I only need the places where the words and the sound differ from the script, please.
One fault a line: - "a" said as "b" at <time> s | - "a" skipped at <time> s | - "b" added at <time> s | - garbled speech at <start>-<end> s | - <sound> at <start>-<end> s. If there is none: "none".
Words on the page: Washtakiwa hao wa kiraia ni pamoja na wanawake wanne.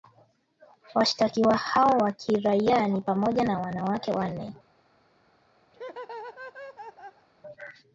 - laugh at 5.7-7.3 s